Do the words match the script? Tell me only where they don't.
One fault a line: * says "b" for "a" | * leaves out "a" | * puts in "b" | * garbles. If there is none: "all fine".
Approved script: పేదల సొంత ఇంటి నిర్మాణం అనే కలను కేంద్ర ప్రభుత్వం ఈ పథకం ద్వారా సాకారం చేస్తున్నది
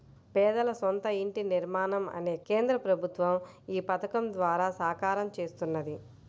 * leaves out "కలను"